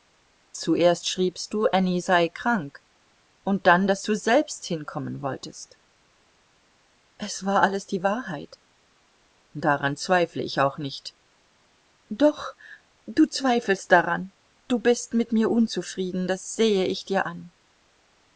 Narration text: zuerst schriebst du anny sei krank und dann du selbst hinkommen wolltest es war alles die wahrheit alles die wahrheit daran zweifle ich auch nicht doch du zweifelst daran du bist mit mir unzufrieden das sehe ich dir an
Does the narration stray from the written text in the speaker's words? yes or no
yes